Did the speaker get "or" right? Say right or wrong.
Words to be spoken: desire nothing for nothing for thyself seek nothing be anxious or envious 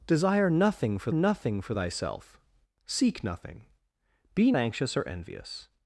right